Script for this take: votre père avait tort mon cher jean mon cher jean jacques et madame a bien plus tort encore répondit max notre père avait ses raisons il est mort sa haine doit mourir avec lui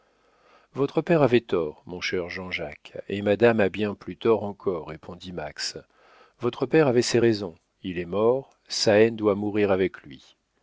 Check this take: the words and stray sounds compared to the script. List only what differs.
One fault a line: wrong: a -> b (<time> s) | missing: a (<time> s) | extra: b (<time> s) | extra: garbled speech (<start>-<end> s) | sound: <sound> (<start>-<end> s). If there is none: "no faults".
missing: mon cher jean (2.5 s)
wrong: notre -> votre (6.4 s)